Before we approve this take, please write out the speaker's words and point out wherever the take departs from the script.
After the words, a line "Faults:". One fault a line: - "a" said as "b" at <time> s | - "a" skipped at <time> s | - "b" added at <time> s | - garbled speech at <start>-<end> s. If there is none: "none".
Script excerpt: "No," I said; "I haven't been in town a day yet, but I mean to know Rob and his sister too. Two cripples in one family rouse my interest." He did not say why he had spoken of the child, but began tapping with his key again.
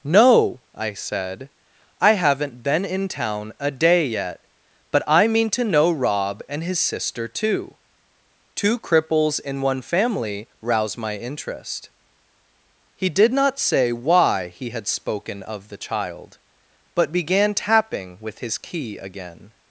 "No," I said; "I haven't been in town a day yet, but I mean to know Rob and his sister too. Two cripples in one family rouse my interest." He did not say why he had spoken of the child, but began tapping with his key again.
Faults:
none